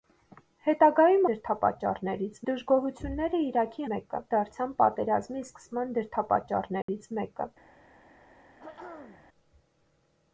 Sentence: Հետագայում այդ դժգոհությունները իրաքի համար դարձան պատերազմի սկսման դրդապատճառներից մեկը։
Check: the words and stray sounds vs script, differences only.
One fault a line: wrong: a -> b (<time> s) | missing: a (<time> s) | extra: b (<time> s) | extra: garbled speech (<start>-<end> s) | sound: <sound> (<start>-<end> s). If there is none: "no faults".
wrong: այդ -> դրդապատճառներից (1.3 s)
wrong: համար -> մեկը (3.9 s)
sound: dropout (6.8-6.9 s)
sound: throat clearing (8.6-9.2 s)